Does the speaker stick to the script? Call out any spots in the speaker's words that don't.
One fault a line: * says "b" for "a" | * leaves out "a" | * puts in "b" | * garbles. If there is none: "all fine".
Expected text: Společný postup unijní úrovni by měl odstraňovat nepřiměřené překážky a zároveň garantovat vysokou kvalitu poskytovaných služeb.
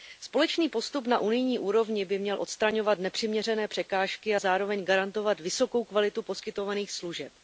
* puts in "na"